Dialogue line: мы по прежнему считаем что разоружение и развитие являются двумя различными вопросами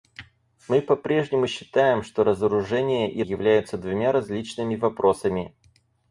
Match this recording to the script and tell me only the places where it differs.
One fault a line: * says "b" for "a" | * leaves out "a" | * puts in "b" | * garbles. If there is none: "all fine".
* leaves out "развитие"